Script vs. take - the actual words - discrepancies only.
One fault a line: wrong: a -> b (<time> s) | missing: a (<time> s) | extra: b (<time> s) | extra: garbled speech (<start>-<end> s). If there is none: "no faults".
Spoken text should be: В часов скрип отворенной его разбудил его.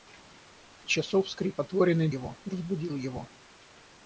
no faults